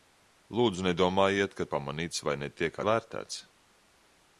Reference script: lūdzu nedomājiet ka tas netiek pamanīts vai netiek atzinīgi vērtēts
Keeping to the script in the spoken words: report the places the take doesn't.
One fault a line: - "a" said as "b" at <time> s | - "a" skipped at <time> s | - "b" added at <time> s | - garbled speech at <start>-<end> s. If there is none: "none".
- "tas netiek" skipped at 1.7 s
- "atzinīgi" skipped at 2.8 s